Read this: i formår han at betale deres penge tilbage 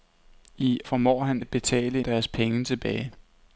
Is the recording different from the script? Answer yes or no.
no